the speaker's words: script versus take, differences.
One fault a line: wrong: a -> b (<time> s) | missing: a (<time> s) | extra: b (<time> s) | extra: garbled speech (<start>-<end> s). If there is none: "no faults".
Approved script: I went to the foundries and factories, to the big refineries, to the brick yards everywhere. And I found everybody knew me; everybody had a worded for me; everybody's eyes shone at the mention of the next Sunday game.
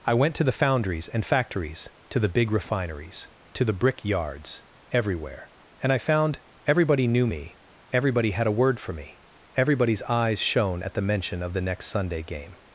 wrong: worded -> word (8.6 s)